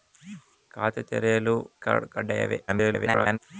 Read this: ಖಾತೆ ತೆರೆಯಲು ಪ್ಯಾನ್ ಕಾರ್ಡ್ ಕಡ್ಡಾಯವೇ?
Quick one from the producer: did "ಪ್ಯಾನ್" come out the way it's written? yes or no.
no